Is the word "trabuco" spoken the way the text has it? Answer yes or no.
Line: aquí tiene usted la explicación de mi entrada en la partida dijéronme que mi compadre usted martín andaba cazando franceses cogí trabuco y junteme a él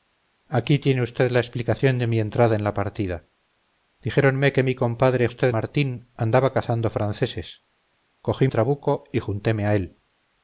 yes